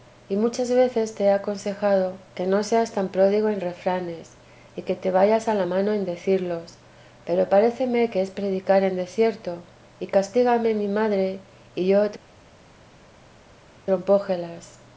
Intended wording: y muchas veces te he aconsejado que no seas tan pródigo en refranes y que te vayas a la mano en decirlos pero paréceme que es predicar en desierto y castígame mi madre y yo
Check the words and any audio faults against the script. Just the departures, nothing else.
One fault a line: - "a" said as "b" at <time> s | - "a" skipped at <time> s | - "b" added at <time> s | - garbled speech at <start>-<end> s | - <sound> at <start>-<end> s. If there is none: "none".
none